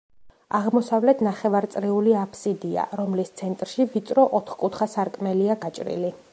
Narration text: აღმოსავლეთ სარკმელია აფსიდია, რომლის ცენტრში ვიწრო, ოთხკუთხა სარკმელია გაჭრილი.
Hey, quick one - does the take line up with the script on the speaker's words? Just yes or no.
no